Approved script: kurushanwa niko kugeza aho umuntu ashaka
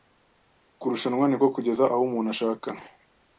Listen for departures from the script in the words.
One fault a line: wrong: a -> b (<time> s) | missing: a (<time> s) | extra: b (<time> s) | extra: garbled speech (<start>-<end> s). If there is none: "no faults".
no faults